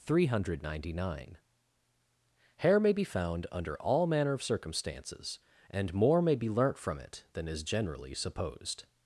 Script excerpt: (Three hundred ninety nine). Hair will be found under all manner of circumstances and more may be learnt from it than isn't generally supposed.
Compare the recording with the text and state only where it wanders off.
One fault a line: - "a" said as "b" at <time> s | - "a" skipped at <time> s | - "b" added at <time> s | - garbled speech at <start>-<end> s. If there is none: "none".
- "will" said as "may" at 2.8 s
- "isn't" said as "is" at 7.5 s